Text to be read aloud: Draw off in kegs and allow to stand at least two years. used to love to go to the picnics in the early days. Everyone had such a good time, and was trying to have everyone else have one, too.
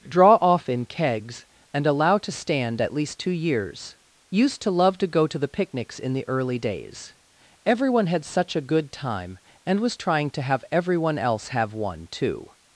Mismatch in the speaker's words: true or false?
false